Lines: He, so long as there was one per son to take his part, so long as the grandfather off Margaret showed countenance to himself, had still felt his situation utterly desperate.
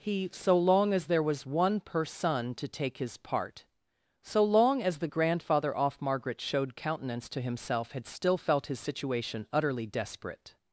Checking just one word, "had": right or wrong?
right